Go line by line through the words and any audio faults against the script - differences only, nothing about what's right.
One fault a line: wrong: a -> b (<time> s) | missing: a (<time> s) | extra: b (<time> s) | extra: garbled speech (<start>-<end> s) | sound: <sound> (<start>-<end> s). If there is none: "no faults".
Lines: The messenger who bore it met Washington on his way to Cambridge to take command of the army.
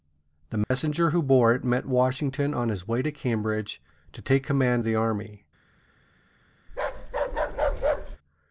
sound: dropout (0.6-0.7 s)
missing: of (4.8 s)
sound: bark (6.7-8.2 s)